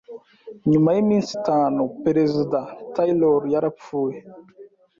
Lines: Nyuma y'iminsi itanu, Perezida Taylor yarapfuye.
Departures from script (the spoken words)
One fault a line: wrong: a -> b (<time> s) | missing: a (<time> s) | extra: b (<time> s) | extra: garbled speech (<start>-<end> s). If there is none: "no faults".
no faults